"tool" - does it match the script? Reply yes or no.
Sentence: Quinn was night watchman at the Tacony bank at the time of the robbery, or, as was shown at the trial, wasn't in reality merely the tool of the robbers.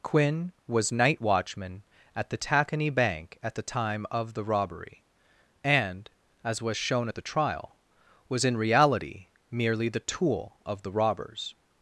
yes